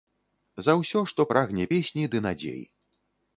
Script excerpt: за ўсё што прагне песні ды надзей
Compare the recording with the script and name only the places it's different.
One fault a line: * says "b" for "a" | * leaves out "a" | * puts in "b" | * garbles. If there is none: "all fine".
all fine